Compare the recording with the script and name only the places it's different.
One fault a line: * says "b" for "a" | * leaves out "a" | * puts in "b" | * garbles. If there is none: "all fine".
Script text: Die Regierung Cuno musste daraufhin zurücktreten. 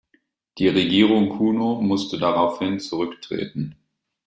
all fine